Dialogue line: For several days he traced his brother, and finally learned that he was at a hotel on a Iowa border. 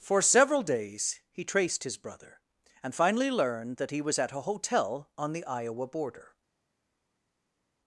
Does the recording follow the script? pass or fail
fail